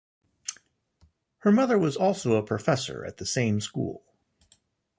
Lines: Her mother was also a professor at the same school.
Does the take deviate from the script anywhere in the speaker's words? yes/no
no